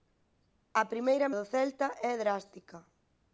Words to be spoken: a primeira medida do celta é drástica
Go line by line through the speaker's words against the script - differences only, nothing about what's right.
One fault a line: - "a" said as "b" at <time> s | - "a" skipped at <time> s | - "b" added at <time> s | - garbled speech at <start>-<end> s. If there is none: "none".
- "medida" skipped at 1.3 s